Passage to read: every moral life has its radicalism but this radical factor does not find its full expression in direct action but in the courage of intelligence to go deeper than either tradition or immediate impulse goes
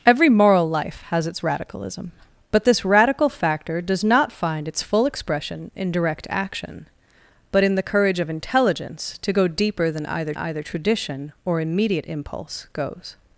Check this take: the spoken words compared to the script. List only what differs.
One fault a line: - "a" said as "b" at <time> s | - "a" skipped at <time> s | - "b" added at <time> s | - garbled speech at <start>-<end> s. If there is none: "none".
- "either" added at 10.3 s